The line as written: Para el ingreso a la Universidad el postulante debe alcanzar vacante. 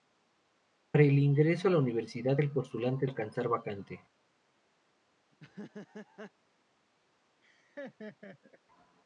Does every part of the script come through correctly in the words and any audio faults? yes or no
no